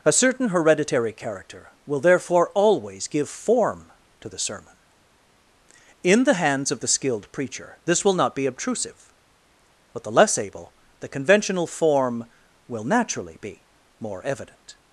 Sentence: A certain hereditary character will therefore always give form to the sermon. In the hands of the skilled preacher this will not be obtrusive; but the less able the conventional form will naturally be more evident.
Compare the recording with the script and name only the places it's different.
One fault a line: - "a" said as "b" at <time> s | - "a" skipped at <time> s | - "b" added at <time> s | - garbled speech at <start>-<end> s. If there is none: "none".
none